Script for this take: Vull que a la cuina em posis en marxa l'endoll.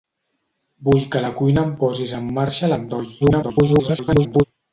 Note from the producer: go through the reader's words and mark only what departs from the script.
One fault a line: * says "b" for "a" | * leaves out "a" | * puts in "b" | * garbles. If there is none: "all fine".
* garbles